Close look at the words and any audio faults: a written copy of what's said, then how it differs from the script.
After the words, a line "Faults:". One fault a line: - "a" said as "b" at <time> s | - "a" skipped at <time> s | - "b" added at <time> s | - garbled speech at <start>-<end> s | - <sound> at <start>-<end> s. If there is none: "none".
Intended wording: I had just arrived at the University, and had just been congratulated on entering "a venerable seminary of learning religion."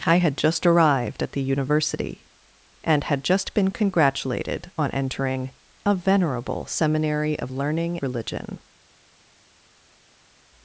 I had just arrived at the University, and had just been congratulated on entering "a venerable seminary of learning religion."
Faults:
none